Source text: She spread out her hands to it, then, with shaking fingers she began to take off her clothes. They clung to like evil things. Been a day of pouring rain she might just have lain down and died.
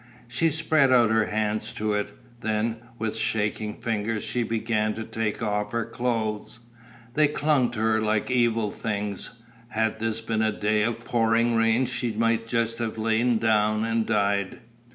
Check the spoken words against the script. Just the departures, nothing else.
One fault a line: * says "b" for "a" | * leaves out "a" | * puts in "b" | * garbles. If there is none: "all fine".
* puts in "her"
* puts in "Had this"